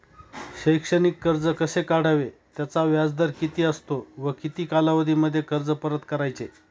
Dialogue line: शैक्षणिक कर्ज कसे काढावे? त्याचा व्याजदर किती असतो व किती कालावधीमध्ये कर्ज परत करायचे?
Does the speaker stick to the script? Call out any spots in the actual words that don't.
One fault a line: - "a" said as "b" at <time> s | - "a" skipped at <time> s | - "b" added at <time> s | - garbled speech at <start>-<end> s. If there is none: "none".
none